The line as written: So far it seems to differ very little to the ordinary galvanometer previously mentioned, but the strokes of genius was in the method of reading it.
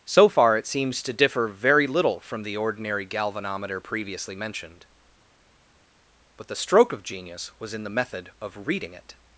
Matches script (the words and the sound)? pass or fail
fail